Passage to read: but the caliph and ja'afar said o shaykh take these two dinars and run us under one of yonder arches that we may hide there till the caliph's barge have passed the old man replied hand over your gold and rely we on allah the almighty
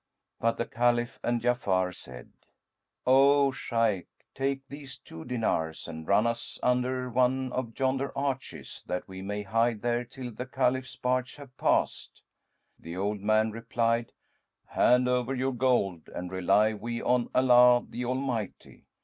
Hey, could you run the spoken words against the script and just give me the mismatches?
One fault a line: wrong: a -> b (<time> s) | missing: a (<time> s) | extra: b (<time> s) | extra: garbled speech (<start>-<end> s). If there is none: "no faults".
no faults